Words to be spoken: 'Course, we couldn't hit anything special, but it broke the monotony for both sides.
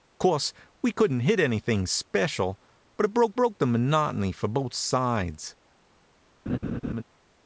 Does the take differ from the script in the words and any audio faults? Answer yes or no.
yes